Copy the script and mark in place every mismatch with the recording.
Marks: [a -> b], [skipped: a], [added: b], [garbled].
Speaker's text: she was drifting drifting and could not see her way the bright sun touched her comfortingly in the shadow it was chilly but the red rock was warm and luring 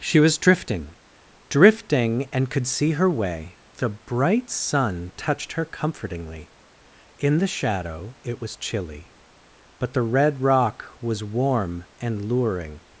she was drifting drifting and could [skipped: not] see her way the bright sun touched her comfortingly in the shadow it was chilly but the red rock was warm and luring